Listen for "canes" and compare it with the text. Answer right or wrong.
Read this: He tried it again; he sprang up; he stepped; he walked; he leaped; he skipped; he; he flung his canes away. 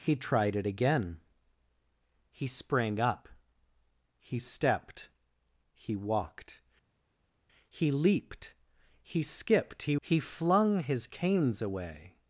right